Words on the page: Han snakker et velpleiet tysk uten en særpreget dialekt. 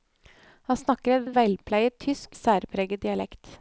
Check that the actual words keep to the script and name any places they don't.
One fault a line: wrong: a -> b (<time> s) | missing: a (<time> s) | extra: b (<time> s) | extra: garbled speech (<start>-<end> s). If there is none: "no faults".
extra: et (1.2 s)
missing: uten (2.4 s)